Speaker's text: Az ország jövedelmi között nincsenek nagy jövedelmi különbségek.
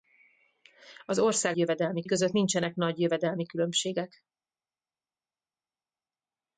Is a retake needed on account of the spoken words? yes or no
no